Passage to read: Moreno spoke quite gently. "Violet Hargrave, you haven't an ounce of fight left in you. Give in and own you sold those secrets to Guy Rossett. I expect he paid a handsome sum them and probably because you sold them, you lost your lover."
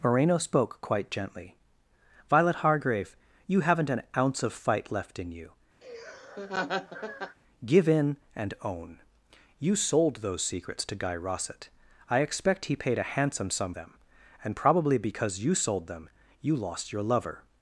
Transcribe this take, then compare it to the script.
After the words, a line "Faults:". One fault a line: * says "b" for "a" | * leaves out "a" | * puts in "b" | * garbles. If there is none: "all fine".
Moreno spoke quite gently. "Violet Hargrave, you haven't an ounce of fight left in you. Give in and own you sold those secrets to Guy Rossett. I expect he paid a handsome sum them and probably because you sold them, you lost your lover."
Faults:
all fine